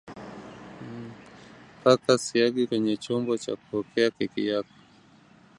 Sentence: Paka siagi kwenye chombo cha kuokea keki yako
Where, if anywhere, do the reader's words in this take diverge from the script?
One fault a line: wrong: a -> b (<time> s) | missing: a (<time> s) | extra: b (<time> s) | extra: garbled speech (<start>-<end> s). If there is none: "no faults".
no faults